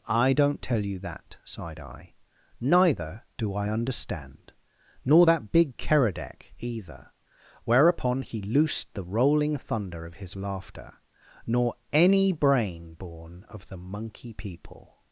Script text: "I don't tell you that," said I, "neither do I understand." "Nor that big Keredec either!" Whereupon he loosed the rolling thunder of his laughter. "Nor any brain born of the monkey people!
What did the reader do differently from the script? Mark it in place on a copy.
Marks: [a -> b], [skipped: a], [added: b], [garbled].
"I don't tell you that," [said -> sighed] I, "neither do I understand." "Nor that big Keredec either!" Whereupon he loosed the rolling thunder of his laughter. "Nor any brain born of the monkey people!